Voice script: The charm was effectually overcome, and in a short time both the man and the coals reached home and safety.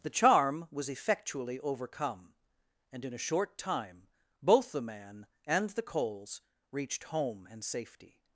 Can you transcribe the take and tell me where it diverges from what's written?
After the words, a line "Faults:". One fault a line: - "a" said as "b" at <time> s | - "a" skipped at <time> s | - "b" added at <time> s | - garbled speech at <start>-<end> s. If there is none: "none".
The charm was effectually overcome, and in a short time both the man and the coals reached home and safety.
Faults:
none